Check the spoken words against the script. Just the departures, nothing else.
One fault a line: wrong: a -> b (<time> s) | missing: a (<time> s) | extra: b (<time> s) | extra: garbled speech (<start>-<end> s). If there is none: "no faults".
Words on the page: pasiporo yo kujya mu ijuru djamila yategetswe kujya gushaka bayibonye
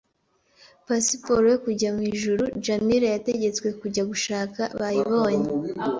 no faults